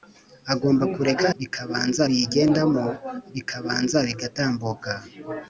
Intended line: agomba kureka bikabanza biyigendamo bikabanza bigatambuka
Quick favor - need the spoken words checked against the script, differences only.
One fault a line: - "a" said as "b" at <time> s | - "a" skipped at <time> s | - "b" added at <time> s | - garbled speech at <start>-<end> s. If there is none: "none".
none